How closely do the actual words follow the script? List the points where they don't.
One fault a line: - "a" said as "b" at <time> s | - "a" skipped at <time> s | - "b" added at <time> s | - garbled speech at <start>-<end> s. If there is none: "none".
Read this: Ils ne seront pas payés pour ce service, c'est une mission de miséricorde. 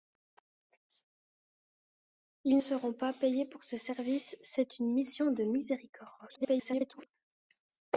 - "ne" skipped at 2.6 s
- garbled speech at 6.2-7.1 s